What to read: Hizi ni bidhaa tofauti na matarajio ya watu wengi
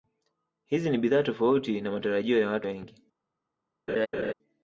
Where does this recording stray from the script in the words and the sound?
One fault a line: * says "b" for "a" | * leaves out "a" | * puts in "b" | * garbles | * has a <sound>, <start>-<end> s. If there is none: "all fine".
* has a laugh, 3.9-4.3 s